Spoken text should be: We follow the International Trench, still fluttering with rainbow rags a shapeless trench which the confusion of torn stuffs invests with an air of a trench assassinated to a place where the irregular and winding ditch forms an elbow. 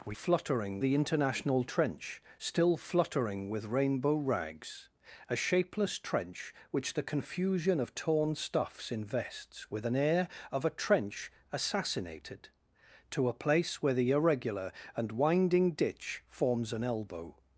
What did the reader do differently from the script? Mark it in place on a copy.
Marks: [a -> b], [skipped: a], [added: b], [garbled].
We [follow -> fluttering] the International Trench, still fluttering with rainbow rags a shapeless trench which the confusion of torn stuffs invests with an air of a trench assassinated to a place where the irregular and winding ditch forms an elbow.